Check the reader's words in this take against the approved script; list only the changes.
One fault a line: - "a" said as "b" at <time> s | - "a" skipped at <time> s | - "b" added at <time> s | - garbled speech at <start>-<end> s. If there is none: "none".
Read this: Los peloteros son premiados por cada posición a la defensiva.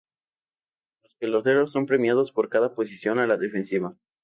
none